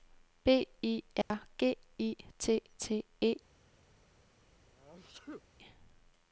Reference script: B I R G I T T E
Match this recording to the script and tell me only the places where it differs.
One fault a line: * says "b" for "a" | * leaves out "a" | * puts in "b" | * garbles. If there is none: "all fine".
all fine